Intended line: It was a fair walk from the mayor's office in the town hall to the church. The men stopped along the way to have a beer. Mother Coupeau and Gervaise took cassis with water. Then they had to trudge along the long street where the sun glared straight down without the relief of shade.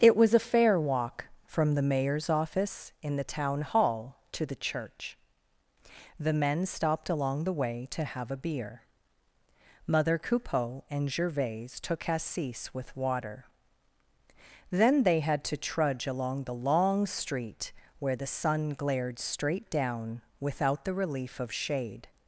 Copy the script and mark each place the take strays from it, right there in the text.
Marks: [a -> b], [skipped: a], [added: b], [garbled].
It was a fair walk from the mayor's office in the town hall to the church. The men stopped along the way to have a beer. Mother Coupeau and Gervaise took cassis with water. Then they had to trudge along the long street where the sun glared straight down without the relief of shade.